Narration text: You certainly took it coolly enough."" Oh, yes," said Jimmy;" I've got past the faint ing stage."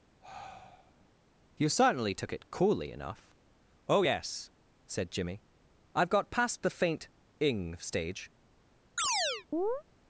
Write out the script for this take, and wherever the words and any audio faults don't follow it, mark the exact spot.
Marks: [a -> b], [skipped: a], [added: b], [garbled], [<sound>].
[sigh] You certainly took it coolly enough."" Oh, yes," said Jimmy;" I've got past the faint ing stage." [chirp]